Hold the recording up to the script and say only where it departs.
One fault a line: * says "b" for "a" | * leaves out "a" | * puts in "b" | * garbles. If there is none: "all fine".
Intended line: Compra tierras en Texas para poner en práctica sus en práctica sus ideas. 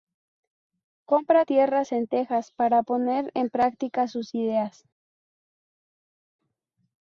* leaves out "en práctica sus"